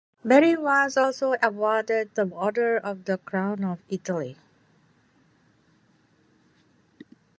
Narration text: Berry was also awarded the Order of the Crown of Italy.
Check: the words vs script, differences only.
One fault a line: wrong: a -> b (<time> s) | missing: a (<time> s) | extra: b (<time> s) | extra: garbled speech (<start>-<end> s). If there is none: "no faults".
no faults